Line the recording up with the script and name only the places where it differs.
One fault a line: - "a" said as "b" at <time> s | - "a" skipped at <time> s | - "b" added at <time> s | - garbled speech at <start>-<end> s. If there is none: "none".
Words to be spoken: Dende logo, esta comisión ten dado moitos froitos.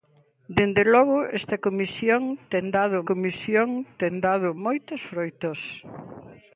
- "comisión ten dado" added at 3.1 s